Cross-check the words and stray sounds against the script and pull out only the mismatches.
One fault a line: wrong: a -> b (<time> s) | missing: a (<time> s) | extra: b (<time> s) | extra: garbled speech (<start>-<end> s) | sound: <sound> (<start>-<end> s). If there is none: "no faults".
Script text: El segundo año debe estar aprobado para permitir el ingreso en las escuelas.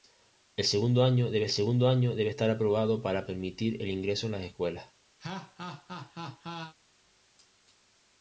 extra: segundo año debe (1.5 s)
sound: laugh (5.2-6.7 s)